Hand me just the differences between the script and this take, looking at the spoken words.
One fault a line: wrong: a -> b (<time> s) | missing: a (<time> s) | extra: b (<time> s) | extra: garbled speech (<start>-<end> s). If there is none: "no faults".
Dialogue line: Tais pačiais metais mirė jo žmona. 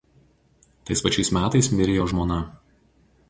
no faults